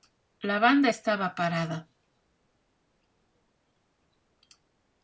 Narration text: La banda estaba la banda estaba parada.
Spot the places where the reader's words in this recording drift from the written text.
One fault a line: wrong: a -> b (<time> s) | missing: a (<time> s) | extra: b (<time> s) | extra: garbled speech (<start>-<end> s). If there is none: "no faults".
missing: la banda estaba (1.3 s)